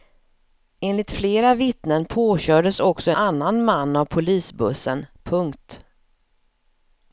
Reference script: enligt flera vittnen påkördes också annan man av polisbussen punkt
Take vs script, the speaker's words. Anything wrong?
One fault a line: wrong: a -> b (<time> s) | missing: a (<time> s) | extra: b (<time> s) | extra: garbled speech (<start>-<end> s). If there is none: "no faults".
no faults